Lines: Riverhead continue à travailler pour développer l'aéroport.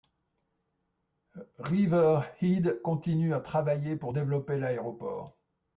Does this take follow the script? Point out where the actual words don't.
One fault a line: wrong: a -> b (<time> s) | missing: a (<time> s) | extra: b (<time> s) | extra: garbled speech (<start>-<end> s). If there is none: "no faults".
no faults